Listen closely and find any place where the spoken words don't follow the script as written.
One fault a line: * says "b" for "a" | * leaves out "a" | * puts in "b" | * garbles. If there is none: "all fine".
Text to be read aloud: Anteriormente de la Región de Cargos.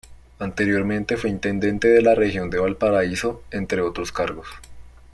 * puts in "fue intendente"
* puts in "Valparaíso entre otros"